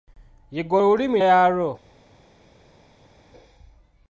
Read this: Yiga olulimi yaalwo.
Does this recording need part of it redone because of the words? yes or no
no